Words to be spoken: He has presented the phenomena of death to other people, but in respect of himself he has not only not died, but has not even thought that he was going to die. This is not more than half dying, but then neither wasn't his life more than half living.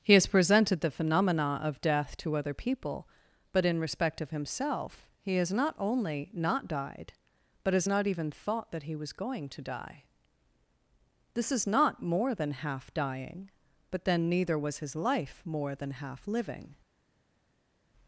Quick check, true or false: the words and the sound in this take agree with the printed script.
false